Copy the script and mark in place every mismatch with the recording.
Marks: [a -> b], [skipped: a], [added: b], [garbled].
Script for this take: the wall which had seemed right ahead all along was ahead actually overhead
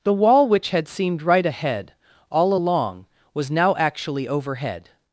the wall which had seemed right ahead all along was [ahead -> now] actually overhead